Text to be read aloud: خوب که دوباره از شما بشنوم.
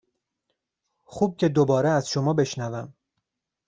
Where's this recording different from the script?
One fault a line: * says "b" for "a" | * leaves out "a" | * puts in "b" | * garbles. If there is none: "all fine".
all fine